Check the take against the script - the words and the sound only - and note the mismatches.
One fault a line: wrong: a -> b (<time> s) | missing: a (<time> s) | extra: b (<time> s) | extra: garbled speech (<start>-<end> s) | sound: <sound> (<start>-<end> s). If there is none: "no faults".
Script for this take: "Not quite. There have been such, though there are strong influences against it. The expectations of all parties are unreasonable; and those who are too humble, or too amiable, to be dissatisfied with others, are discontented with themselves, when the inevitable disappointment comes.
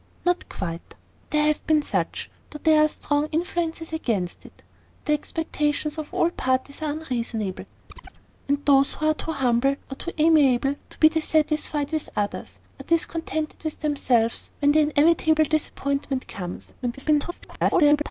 sound: chirp (7.9-8.2 s)
extra: garbled speech (16.8-18.1 s)